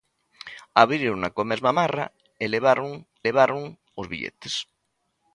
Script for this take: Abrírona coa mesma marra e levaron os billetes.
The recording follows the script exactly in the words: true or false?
false